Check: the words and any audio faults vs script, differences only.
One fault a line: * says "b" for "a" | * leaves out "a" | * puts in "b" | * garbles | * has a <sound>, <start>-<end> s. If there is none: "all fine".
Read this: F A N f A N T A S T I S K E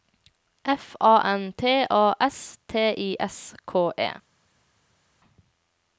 * leaves out "f A N"